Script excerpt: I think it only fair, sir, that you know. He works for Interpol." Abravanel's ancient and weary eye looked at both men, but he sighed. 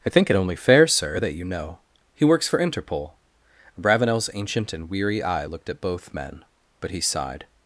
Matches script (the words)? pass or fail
pass